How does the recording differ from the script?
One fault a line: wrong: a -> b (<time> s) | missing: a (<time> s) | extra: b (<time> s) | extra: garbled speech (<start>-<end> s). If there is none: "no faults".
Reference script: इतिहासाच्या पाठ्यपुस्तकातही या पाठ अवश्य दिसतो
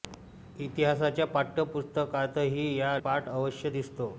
no faults